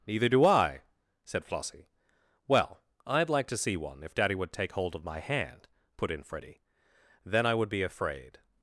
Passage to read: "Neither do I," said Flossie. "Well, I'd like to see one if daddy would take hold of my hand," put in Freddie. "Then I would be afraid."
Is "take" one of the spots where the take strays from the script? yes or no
no